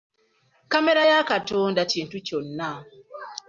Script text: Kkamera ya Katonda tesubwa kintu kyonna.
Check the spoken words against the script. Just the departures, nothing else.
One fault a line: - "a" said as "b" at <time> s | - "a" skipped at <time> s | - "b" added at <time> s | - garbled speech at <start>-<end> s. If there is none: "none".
- "tesubwa" skipped at 1.8 s